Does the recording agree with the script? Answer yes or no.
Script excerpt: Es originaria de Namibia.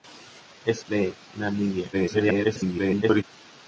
no